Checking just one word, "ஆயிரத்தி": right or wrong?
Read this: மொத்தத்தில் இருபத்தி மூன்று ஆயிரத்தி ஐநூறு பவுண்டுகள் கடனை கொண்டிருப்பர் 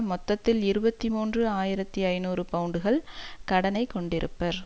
right